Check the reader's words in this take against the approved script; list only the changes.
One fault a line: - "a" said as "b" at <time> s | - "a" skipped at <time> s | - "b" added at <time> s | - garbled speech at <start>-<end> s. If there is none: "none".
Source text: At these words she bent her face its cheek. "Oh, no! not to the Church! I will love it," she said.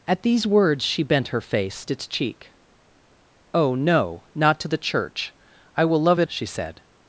none